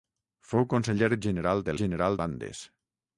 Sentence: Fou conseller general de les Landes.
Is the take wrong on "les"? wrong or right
wrong